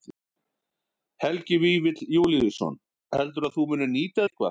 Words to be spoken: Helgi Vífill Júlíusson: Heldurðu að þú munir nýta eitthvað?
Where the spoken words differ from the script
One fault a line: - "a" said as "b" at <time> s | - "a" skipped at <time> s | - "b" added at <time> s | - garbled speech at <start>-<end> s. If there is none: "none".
none